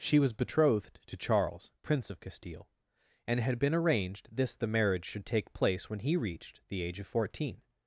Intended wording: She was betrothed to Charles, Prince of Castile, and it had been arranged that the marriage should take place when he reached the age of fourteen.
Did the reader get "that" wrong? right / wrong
wrong